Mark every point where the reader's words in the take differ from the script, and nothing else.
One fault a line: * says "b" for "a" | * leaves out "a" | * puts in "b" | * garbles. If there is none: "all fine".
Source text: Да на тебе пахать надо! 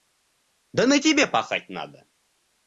all fine